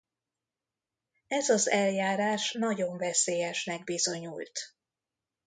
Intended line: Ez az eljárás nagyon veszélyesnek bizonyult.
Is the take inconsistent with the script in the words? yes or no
no